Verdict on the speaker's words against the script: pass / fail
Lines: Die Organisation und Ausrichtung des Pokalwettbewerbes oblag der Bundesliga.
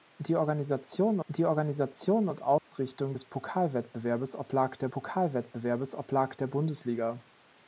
fail